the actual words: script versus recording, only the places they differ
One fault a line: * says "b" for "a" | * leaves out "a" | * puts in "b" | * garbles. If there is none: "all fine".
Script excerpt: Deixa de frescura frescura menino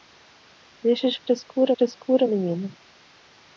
all fine